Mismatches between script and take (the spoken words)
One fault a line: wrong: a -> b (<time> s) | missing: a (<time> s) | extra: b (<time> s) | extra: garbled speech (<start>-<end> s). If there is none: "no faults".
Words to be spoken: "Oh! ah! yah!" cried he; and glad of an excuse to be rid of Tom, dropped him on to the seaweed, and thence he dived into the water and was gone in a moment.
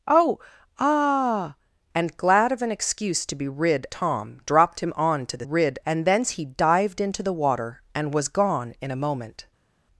missing: yah cried he (1.6 s)
missing: of (3.9 s)
wrong: seaweed -> rid (5.4 s)